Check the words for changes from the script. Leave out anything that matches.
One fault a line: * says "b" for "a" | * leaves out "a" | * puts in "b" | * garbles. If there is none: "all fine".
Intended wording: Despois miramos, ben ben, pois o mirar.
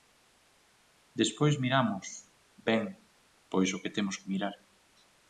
* leaves out "ben"
* puts in "que temos que"